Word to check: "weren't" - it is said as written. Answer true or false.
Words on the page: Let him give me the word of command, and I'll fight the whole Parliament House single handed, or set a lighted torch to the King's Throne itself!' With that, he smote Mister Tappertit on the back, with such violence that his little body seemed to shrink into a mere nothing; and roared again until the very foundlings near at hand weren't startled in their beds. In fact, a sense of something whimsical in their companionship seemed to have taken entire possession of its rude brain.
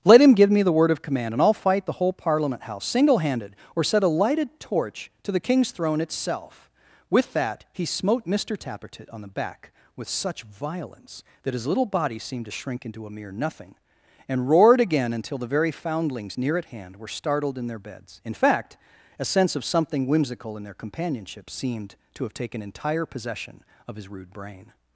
false